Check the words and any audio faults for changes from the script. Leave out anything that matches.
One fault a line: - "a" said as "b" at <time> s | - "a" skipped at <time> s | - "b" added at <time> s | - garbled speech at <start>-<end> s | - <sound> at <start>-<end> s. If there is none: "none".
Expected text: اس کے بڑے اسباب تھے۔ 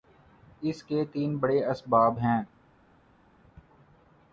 - "تین" added at 1.1 s
- "تھے" said as "ہیں" at 2.2 s